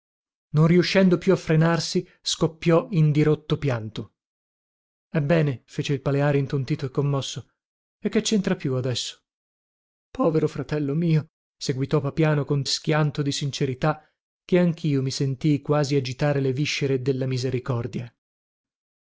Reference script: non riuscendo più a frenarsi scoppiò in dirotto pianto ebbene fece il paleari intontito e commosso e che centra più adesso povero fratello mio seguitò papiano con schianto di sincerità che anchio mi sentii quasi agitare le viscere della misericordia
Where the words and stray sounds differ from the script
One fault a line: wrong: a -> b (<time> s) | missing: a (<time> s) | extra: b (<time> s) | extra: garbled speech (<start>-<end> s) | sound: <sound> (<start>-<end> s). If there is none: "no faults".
no faults